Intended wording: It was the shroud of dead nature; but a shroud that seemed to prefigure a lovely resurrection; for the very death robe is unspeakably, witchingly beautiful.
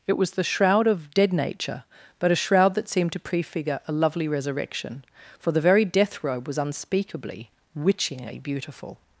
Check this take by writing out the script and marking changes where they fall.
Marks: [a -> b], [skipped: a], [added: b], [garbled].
It was the shroud of dead nature; but a shroud that seemed to prefigure a lovely resurrection; for the very death robe [is -> was] unspeakably, witchingly beautiful.